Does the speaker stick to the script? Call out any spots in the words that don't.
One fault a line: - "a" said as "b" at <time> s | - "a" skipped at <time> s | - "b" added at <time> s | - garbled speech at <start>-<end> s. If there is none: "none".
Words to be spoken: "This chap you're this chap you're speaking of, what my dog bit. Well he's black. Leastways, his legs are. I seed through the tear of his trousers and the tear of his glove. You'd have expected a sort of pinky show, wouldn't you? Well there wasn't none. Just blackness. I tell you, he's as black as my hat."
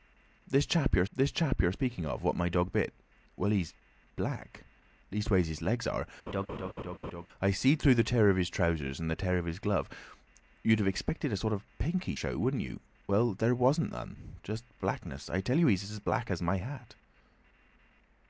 none